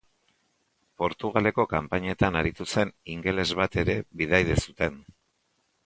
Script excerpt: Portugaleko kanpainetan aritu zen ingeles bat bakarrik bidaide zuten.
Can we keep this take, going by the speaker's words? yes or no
no